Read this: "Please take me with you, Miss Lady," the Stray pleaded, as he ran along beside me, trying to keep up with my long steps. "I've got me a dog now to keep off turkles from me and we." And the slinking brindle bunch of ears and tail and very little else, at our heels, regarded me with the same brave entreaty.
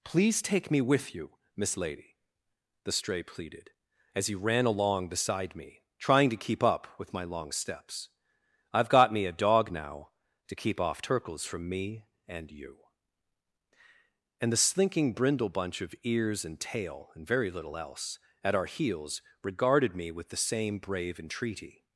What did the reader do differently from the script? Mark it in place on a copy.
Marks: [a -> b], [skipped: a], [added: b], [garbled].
"Please take me with you, Miss Lady," the Stray pleaded, as he ran along beside me, trying to keep up with my long steps. "I've got me a dog now to keep off turkles from me and [we." -> you] And the slinking brindle bunch of ears and tail and very little else, at our heels, regarded me with the same brave entreaty.